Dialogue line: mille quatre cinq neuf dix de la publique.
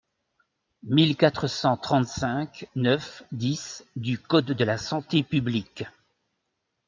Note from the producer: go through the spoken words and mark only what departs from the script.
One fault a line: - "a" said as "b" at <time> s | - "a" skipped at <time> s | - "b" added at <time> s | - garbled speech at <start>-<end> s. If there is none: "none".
- "cent trente" added at 1.4 s
- "du code" added at 4.0 s
- "santé" added at 4.8 s